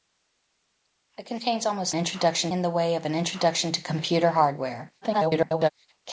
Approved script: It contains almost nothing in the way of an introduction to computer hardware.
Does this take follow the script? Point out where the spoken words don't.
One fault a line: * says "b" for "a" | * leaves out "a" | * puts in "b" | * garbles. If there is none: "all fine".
* says "introduction" for "nothing"
* garbles